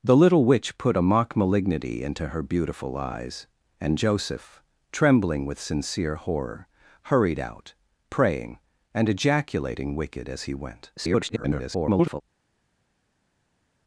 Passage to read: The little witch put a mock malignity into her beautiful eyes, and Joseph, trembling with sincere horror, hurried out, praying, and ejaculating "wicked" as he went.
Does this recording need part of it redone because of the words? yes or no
yes